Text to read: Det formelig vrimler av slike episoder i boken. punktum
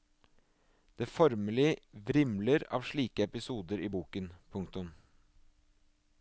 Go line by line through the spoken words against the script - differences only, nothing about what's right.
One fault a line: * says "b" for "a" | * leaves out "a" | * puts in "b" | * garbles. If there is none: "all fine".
all fine